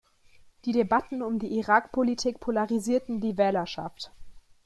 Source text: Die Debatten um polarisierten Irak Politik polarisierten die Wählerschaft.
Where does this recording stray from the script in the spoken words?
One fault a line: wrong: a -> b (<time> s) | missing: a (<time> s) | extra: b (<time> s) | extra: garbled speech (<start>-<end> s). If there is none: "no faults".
wrong: polarisierten -> die (1.4 s)